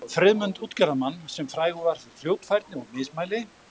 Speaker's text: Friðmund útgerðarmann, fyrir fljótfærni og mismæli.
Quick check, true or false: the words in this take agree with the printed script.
false